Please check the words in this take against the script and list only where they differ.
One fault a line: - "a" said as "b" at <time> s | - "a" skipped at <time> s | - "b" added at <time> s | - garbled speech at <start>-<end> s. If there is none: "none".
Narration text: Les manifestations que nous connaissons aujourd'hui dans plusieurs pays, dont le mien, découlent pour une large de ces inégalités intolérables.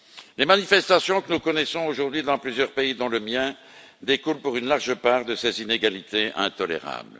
- "part" added at 5.0 s